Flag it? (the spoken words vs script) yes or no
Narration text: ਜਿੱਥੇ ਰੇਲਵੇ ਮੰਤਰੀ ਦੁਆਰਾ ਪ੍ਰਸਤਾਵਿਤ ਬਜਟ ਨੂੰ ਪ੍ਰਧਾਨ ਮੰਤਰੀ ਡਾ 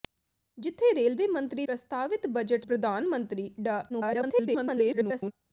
yes